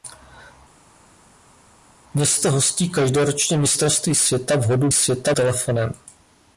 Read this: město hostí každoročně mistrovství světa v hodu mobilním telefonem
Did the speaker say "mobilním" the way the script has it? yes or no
no